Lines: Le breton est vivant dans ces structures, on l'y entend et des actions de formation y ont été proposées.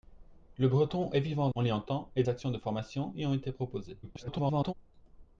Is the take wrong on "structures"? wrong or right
wrong